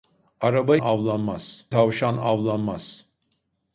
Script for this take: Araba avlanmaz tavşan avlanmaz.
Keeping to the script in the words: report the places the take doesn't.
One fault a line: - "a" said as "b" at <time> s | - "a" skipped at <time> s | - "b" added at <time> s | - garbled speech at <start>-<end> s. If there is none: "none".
none